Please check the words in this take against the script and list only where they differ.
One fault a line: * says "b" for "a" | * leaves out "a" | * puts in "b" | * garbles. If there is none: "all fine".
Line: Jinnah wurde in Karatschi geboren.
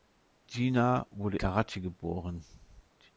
* leaves out "in"